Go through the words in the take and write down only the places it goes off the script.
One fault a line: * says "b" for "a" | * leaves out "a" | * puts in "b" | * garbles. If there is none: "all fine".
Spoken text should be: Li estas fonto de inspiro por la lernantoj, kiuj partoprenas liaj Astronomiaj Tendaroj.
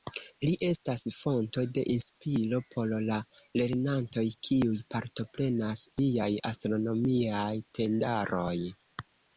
all fine